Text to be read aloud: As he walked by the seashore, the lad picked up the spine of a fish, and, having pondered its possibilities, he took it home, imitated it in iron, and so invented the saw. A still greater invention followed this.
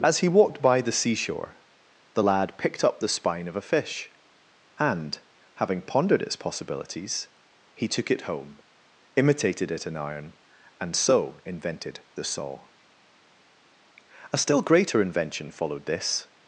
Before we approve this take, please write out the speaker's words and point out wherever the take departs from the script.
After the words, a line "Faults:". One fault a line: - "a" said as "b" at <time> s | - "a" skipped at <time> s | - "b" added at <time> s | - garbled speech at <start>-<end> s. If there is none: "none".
As he walked by the seashore, the lad picked up the spine of a fish, and, having pondered its possibilities, he took it home, imitated it in iron, and so invented the saw. A still greater invention followed this.
Faults:
none